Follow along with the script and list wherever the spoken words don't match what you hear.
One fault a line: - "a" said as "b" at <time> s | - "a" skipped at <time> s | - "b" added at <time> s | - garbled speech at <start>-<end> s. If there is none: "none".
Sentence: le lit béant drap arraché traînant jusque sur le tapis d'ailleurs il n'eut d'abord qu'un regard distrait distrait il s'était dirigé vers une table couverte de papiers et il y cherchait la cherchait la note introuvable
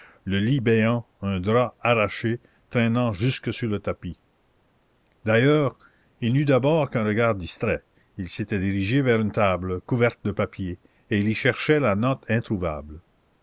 - "un" added at 1.2 s
- "distrait" skipped at 7.8 s
- "cherchait la" skipped at 11.9 s